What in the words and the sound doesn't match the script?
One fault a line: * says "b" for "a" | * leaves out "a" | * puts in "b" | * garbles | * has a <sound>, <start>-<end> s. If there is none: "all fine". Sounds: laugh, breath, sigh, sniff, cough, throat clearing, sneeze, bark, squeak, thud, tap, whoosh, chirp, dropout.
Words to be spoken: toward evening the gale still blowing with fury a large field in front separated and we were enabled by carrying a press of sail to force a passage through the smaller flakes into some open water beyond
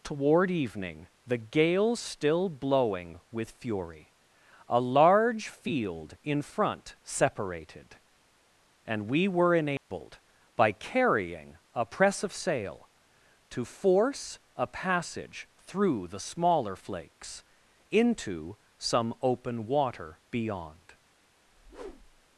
* has a dropout, 9.8-9.9 s
* has a whoosh, 21.5-22.3 s